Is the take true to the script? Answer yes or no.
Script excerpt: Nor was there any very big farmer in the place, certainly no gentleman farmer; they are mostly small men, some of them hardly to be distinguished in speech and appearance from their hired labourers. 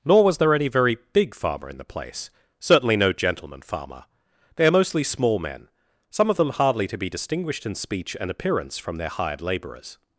yes